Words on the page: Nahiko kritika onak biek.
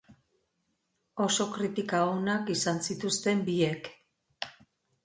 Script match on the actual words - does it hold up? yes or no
no